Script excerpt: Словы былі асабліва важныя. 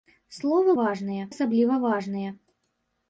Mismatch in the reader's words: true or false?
true